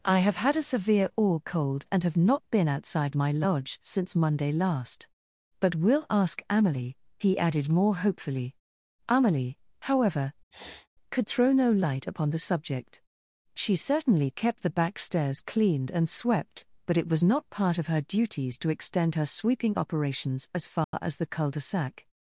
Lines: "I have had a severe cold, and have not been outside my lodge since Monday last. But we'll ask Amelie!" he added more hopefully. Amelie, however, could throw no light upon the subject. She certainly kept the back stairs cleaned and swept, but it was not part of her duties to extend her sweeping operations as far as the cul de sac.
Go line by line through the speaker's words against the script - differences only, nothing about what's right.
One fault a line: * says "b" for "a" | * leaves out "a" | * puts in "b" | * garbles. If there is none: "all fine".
* puts in "or"